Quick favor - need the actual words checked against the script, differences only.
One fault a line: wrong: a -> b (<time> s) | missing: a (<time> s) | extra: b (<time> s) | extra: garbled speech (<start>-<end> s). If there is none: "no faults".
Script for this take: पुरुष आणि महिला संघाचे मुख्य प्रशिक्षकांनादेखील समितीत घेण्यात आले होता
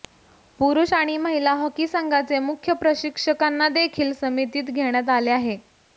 extra: हॉकी (1.6 s)
wrong: होता -> आहे (5.3 s)